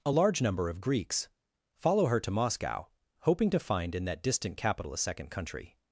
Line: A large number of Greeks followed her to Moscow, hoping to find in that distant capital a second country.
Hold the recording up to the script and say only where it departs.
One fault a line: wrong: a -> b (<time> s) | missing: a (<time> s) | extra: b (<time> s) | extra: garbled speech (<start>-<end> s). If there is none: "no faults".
wrong: followed -> follow (1.8 s)